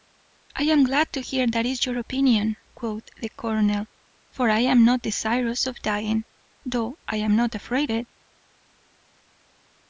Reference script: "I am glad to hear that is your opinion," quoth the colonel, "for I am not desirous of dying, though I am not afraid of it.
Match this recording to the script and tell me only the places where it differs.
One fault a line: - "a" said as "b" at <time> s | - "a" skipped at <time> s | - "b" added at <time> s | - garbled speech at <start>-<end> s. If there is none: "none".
- "of" skipped at 7.9 s